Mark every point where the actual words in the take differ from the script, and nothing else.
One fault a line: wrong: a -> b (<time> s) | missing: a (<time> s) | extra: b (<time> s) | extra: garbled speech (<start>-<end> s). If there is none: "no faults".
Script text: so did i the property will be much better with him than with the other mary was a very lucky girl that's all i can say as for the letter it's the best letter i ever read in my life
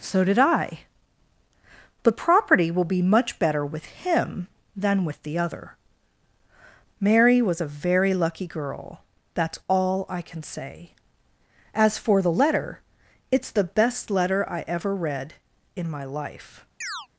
no faults